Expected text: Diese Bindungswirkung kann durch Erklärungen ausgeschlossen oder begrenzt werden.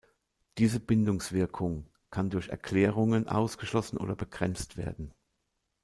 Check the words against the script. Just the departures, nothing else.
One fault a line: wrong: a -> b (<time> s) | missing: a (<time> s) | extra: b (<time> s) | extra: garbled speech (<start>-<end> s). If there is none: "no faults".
no faults